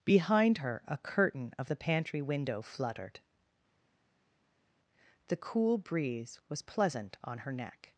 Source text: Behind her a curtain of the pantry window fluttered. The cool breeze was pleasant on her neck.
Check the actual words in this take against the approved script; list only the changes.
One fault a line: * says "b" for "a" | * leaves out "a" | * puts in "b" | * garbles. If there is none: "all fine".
all fine